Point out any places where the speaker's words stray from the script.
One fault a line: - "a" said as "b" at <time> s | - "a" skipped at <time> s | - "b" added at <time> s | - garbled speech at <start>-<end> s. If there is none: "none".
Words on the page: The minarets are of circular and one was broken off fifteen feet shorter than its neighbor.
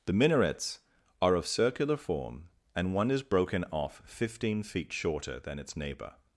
- "form" added at 2.0 s
- "was" said as "is" at 3.1 s